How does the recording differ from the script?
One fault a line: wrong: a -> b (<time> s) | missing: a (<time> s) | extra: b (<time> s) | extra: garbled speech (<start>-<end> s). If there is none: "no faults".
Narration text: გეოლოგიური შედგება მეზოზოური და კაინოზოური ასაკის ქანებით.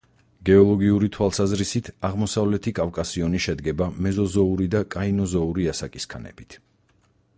extra: თვალსაზრისით აღმოსავლეთი კავკასიონი (1.2 s)